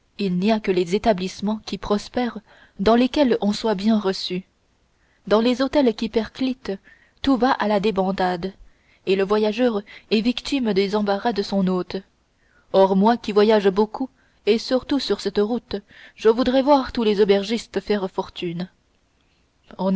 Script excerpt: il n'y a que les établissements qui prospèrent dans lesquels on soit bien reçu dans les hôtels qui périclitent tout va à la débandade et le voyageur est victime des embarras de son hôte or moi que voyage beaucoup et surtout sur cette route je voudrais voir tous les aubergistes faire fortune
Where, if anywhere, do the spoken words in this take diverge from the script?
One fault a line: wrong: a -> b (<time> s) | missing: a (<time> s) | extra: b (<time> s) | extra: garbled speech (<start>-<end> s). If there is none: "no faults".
wrong: que -> qui (13.2 s)